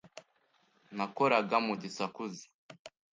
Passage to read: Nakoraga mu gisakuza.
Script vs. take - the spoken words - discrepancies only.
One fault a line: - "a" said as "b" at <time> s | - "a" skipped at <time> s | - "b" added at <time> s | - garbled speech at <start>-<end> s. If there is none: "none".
none